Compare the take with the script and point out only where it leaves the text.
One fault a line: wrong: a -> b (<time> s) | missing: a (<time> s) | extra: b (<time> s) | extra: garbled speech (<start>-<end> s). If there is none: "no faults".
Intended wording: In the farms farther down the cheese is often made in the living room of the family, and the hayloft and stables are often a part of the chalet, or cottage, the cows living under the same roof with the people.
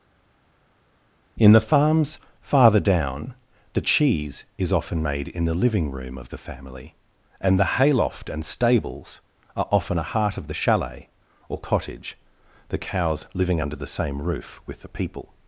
wrong: part -> heart (10.0 s)